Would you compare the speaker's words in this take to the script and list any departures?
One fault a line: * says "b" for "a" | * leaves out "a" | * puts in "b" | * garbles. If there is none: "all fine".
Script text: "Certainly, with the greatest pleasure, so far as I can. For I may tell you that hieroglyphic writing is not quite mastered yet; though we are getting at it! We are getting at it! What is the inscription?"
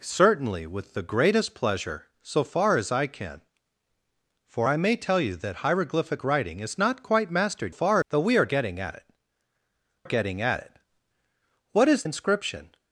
* says "far" for "yet"
* leaves out "We are"
* leaves out "the"